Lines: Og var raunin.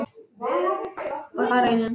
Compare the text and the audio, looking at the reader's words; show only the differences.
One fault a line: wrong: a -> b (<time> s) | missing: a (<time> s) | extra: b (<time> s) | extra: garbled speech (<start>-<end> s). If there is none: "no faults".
no faults